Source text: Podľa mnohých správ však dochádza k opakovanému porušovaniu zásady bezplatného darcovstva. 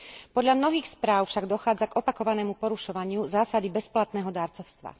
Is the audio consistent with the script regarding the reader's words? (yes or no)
yes